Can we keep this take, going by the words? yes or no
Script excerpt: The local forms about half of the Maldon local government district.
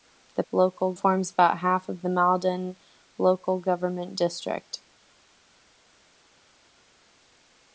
yes